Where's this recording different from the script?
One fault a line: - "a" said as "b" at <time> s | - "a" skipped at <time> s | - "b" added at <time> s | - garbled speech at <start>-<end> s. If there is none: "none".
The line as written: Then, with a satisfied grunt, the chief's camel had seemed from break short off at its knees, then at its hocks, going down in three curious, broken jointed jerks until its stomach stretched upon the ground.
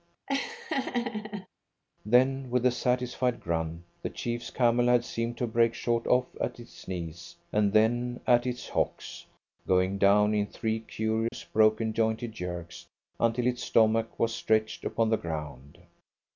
- "from" said as "to" at 5.4 s
- "and" added at 7.5 s
- "was" added at 14.2 s